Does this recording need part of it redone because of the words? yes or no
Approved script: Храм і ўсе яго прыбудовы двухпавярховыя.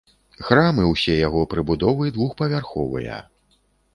no